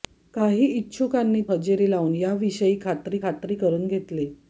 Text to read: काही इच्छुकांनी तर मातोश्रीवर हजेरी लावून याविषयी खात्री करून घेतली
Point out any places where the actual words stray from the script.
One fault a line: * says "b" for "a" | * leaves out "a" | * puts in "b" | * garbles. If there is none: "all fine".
* leaves out "तर मातोश्रीवर"
* puts in "खात्री"